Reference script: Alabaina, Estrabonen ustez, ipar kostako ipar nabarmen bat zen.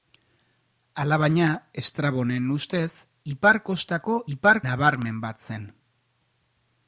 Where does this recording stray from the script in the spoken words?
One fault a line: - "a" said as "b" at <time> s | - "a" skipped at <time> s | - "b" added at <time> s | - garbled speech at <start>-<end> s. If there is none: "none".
none